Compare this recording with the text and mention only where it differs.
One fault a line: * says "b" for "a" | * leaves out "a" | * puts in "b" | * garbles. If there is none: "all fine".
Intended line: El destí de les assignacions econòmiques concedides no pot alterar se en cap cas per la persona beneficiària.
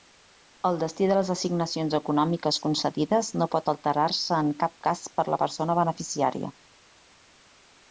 all fine